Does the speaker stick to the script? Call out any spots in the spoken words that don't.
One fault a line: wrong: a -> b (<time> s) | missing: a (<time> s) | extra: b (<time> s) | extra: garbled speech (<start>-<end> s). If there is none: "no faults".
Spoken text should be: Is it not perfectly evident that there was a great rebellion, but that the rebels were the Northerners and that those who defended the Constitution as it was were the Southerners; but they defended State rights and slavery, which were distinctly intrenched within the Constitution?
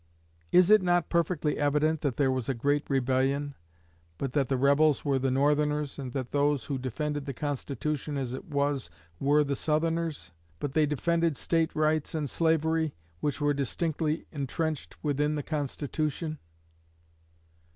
no faults